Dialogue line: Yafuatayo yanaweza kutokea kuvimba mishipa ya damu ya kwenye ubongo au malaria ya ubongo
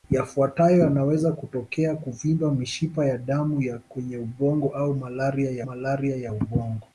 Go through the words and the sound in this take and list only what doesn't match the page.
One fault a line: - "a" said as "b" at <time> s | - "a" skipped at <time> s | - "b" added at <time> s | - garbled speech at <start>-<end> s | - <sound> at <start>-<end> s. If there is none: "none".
- "malaria ya" added at 5.6 s